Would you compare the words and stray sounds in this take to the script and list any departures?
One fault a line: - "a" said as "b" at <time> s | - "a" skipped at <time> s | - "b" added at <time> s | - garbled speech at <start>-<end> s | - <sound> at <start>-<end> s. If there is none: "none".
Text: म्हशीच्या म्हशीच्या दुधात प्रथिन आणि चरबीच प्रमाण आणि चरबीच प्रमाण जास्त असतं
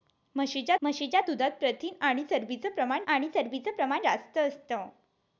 none